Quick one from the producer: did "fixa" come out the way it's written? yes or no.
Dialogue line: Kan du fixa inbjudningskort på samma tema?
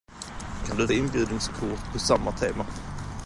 no